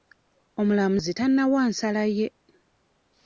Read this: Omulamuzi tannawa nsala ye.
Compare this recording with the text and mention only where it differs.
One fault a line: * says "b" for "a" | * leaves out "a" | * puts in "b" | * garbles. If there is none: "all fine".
all fine